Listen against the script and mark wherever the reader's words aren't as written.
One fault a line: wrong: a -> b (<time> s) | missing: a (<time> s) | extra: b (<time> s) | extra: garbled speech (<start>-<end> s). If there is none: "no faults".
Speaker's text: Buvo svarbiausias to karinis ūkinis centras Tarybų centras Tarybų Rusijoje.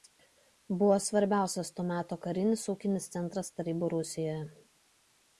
extra: meto (1.9 s)
missing: centras Tarybų (3.9 s)